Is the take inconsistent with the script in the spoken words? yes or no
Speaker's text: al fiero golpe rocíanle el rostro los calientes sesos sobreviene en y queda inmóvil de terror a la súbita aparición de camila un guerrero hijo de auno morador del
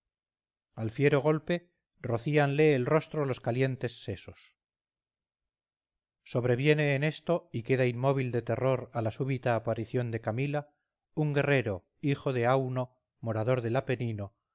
yes